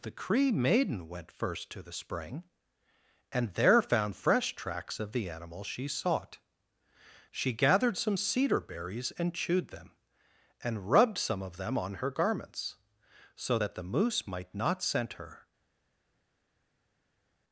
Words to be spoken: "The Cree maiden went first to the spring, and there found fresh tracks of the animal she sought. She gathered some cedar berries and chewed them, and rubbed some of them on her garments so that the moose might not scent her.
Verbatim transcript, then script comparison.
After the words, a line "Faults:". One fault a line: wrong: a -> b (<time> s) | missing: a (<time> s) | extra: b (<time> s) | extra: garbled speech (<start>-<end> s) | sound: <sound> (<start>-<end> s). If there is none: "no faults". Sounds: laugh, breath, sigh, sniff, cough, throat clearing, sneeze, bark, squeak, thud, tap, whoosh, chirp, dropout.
"The Cree maiden went first to the spring, and there found fresh tracks of the animal she sought. She gathered some cedar berries and chewed them, and rubbed some of them on her garments so that the moose might not scent her.
Faults:
no faults